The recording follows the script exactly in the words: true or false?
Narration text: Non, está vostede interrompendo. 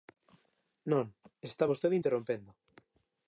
true